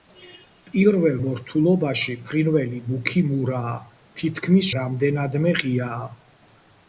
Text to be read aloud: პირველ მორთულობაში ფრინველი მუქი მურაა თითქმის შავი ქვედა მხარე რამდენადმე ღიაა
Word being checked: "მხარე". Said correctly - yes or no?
no